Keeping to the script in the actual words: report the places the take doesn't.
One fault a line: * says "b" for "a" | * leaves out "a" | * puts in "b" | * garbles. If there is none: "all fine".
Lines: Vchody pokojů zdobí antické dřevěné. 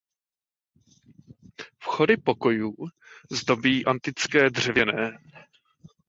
all fine